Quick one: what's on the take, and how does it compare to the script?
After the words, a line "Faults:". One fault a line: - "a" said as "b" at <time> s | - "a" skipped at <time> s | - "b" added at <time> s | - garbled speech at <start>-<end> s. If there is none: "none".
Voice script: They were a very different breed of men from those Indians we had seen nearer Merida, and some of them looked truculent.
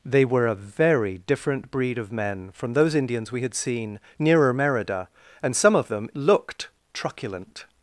They were a very different breed of men from those Indians we had seen nearer Merida, and some of them looked truculent.
Faults:
none